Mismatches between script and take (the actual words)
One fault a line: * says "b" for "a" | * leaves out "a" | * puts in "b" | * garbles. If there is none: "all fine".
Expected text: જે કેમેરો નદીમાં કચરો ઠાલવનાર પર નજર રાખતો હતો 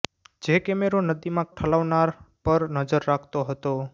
* leaves out "કચરો"